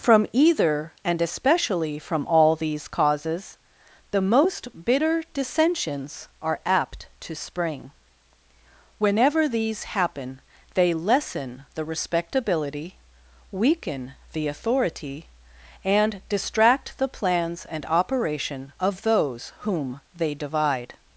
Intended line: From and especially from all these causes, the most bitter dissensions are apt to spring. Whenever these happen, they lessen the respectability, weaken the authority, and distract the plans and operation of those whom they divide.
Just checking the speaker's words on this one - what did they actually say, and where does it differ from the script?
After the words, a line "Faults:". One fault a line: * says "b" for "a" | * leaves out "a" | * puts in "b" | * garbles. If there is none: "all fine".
From either, and especially from all these causes, the most bitter dissensions are apt to spring. Whenever these happen, they lessen the respectability, weaken the authority, and distract the plans and operation of those whom they divide.
Faults:
* puts in "either"